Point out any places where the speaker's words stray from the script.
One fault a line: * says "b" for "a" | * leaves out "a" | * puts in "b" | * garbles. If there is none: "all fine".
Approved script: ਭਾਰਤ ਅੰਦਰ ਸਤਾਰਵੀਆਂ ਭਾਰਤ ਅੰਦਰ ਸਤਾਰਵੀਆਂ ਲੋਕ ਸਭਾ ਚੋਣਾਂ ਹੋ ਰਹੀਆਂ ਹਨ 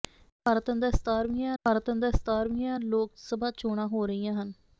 all fine